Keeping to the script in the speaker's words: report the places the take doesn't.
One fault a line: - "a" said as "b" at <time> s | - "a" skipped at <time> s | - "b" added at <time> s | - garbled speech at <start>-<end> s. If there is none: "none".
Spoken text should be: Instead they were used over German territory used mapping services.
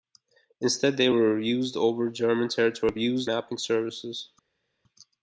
none